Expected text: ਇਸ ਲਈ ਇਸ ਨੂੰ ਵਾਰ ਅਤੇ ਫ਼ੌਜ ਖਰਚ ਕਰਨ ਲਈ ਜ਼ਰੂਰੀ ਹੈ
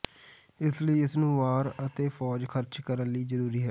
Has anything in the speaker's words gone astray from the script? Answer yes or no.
no